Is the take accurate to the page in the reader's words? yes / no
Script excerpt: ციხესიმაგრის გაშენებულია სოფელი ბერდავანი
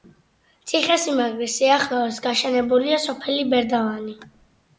no